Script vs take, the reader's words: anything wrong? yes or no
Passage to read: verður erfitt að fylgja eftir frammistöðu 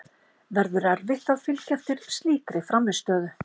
yes